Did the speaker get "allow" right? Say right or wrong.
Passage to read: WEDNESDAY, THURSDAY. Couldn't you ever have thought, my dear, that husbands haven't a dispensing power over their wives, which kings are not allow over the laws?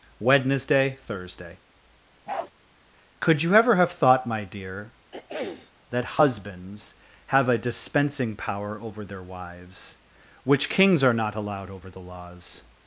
wrong